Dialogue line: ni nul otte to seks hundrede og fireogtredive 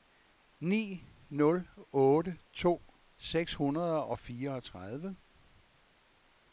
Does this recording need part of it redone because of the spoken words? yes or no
no